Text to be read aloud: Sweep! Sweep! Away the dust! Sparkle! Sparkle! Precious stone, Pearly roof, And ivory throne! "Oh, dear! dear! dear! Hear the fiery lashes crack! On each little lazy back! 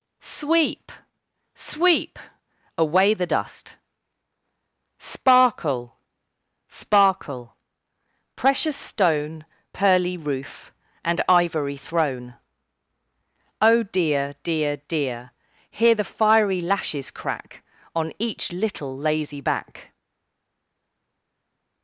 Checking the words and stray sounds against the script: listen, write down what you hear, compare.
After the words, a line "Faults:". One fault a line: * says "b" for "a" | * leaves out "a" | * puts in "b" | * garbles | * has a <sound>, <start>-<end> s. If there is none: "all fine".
Sweep! Sweep! Away the dust! Sparkle! Sparkle! Precious stone, Pearly roof, And ivory throne! "Oh, dear! dear! dear! Hear the fiery lashes crack! On each little lazy back!
Faults:
all fine